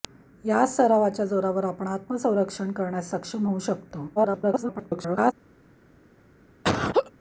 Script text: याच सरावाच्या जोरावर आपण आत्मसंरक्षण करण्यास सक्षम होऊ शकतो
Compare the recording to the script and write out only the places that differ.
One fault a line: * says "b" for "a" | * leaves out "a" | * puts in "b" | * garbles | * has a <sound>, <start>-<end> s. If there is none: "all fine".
* garbles
* has a laugh, 6.6-7.1 s